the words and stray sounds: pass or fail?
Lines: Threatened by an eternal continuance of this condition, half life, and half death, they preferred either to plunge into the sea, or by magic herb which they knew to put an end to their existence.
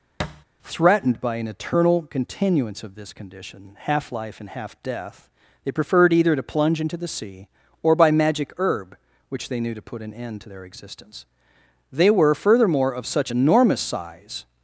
fail